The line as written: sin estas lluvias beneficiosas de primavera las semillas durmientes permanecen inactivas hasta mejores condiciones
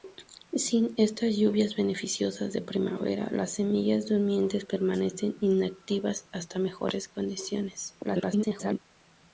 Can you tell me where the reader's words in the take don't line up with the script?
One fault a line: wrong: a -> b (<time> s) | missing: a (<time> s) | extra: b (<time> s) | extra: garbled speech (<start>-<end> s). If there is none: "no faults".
extra: garbled speech (8.0-8.8 s)